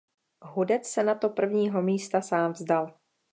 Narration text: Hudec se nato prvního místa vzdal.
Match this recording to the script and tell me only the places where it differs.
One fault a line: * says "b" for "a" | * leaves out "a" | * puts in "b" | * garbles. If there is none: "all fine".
* puts in "sám"